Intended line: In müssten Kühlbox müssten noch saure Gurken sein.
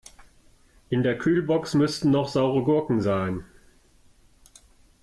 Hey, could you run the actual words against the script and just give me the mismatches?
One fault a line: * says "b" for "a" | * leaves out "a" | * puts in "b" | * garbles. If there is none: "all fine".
* says "der" for "müssten"